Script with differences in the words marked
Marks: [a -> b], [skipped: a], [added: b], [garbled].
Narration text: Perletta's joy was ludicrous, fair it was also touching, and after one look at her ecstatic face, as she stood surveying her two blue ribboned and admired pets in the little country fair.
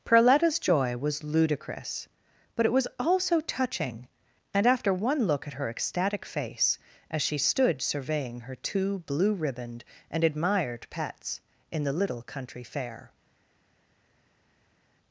Perletta's joy was ludicrous, [fair -> but] it was also touching, and after one look at her ecstatic face, as she stood surveying her two blue ribboned and admired pets in the little country fair.